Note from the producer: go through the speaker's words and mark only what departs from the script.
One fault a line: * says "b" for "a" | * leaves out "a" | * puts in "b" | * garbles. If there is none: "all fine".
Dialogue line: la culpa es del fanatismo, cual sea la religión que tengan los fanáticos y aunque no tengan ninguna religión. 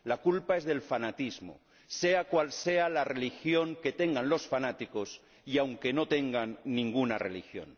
* puts in "sea"